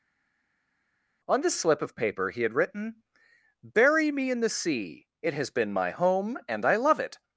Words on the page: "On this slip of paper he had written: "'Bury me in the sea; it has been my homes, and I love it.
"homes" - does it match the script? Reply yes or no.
no